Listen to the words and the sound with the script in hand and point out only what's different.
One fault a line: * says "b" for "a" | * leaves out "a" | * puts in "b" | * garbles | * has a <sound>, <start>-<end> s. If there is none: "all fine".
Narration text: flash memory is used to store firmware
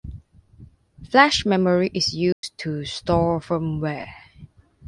* has a dropout, 2.3-2.4 s